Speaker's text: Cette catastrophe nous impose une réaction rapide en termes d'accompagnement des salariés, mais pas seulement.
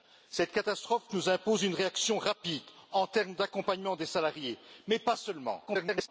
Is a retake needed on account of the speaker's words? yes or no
yes